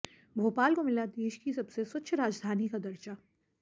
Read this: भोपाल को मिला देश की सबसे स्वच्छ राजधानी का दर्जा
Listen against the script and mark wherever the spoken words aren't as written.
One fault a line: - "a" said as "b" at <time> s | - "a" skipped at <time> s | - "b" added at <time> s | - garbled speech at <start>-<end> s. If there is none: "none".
none